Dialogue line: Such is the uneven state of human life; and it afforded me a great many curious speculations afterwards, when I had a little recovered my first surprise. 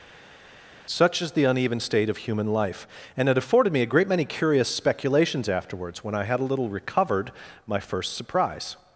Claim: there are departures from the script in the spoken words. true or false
false